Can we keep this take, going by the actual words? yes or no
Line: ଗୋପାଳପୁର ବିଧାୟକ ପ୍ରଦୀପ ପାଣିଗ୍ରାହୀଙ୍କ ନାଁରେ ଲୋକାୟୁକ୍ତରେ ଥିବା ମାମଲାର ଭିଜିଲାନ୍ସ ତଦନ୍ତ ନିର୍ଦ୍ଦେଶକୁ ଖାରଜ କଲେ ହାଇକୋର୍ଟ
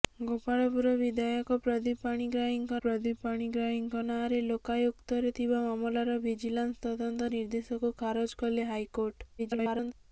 no